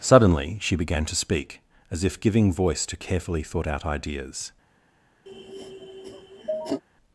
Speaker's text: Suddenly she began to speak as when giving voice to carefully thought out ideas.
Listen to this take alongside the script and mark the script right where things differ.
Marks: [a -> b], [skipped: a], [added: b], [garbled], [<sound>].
Suddenly she began to speak as [when -> if] giving voice to carefully thought out ideas. [sniff]